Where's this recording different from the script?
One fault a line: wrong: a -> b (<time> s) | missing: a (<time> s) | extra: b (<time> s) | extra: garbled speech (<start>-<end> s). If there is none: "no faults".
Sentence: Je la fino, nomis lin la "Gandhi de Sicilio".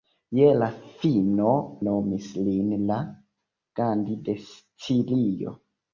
no faults